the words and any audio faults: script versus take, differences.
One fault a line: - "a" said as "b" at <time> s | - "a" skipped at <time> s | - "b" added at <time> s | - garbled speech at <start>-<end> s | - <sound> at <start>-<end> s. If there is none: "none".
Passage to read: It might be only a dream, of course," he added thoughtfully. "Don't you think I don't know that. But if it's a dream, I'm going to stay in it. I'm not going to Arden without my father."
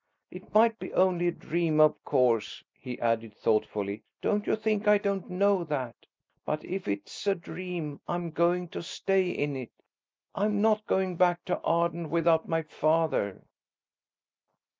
- "back" added at 11.2 s